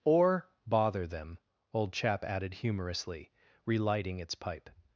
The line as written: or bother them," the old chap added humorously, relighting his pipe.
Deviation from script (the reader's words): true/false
true